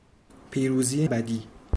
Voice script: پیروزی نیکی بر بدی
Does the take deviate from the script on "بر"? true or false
true